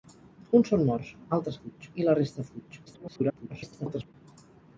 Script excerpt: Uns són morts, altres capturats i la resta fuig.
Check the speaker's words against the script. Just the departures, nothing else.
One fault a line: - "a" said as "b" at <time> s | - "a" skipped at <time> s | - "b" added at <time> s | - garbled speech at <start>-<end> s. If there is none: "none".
- "capturats" said as "fuig" at 1.6 s
- garbled speech at 2.9-4.1 s